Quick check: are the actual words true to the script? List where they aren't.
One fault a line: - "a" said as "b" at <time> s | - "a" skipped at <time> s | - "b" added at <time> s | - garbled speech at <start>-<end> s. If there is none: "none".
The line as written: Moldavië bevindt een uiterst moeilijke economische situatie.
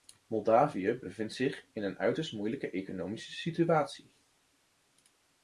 - "zich in" added at 1.3 s